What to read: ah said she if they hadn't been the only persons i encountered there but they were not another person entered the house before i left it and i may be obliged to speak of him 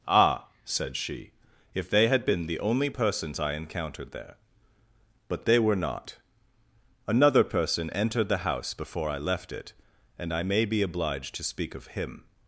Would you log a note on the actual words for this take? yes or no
yes